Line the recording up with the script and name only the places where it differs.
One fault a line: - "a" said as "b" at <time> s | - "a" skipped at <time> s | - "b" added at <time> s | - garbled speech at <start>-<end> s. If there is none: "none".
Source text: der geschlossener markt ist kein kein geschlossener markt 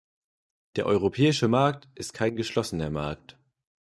- "geschlossener" said as "europäische" at 0.9 s
- "kein" skipped at 2.4 s